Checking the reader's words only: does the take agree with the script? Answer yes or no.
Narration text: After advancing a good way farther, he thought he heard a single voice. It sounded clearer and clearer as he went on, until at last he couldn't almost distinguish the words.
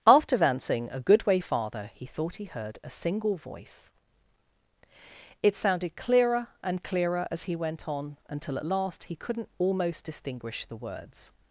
yes